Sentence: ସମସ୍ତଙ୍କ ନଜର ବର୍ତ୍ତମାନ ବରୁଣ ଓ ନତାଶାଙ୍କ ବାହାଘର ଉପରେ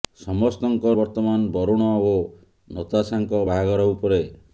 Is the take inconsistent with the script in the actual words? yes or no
yes